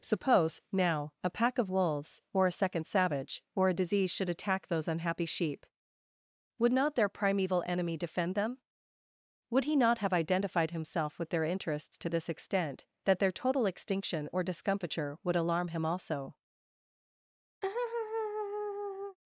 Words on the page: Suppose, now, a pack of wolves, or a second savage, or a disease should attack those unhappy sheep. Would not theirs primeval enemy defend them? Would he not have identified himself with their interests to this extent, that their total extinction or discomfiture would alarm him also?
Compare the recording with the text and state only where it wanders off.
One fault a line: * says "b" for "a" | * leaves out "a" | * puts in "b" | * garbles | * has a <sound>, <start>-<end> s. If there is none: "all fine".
* says "their" for "theirs"
* has a laugh, 17.6-19.2 s